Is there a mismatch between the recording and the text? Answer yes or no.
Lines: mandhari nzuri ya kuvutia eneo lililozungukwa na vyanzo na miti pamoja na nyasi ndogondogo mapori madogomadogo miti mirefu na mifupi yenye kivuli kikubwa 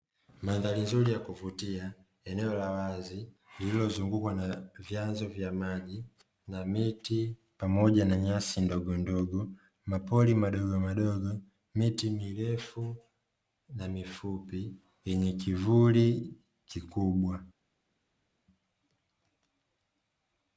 yes